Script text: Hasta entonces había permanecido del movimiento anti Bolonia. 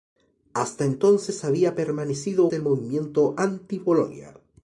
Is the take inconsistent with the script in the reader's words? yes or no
no